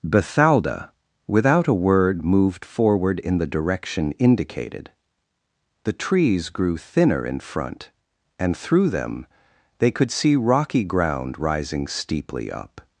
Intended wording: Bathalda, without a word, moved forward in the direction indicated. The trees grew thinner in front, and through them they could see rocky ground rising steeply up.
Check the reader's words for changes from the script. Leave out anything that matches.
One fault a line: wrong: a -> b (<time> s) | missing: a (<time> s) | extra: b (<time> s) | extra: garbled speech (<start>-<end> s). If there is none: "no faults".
no faults